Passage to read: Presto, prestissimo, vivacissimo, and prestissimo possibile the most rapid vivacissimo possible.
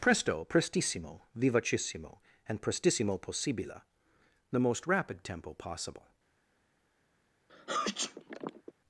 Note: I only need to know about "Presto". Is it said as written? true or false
true